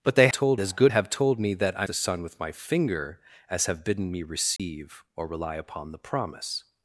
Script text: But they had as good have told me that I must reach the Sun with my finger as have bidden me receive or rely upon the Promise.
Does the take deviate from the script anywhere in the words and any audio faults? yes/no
yes